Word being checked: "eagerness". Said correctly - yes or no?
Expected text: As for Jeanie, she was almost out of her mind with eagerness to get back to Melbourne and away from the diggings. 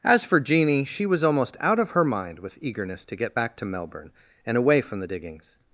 yes